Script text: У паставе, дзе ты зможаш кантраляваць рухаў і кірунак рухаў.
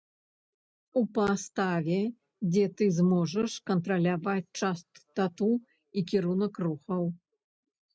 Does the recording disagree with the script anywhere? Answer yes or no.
yes